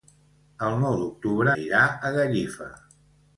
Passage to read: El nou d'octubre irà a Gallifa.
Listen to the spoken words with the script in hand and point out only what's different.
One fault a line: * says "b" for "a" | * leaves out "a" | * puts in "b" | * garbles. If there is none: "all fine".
all fine